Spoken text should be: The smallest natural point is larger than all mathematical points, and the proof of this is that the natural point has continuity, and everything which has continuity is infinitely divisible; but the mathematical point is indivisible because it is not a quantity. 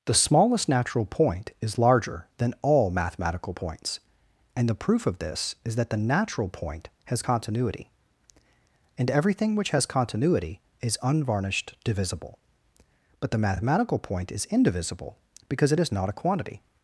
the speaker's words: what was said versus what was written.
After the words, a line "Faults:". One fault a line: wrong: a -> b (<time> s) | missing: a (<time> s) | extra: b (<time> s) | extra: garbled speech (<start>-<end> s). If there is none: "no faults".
The smallest natural point is larger than all mathematical points, and the proof of this is that the natural point has continuity, and everything which has continuity is unvarnished divisible; but the mathematical point is indivisible because it is not a quantity.
Faults:
wrong: infinitely -> unvarnished (11.0 s)